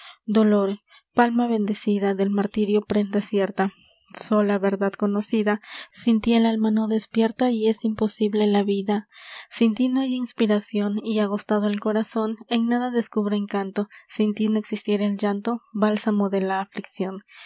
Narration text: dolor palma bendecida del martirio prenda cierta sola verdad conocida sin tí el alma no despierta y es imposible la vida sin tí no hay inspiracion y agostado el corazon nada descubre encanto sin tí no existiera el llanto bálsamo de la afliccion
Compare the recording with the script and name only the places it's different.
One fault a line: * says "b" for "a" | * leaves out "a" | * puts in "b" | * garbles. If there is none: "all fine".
* puts in "en"